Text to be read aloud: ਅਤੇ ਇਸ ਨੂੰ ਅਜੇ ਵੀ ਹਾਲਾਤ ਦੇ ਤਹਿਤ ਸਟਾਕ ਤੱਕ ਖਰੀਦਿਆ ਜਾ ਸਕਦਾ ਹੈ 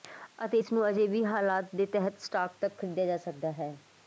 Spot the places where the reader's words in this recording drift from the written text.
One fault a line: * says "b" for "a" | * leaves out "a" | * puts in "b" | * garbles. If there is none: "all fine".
all fine